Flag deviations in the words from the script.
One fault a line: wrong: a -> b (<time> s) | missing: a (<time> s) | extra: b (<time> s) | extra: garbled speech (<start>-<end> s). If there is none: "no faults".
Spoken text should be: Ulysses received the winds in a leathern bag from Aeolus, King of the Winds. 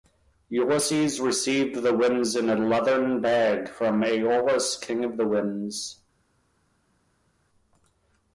no faults